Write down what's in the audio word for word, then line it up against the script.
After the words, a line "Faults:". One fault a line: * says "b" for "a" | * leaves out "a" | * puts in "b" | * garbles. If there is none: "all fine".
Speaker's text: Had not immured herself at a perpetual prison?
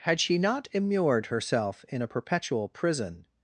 Had she not immured herself in a perpetual prison?
Faults:
* puts in "she"
* says "in" for "at"